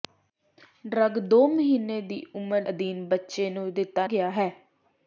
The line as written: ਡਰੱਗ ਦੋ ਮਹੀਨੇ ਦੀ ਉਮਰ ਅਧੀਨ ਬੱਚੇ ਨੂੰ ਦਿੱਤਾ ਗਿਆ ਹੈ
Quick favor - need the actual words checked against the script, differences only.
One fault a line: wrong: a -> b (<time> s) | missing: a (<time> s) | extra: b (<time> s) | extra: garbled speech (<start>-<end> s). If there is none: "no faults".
no faults